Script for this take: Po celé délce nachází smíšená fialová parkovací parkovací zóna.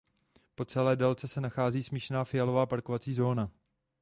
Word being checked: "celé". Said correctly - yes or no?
yes